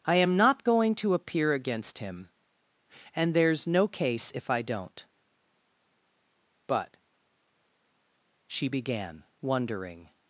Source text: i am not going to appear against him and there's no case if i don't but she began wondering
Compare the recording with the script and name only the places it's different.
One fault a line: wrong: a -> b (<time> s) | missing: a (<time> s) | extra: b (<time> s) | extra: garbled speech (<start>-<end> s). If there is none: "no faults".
no faults